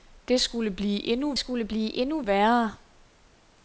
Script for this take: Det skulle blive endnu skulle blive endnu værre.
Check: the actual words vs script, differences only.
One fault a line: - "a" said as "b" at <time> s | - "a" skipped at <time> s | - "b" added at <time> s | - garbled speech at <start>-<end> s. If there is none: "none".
none